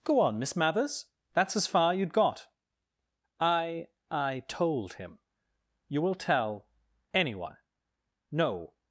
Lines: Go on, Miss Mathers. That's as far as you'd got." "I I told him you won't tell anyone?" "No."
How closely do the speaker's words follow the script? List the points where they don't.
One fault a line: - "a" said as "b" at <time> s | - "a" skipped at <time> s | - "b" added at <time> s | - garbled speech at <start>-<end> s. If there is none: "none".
- "as" skipped at 1.9 s
- "won't" said as "will" at 6.0 s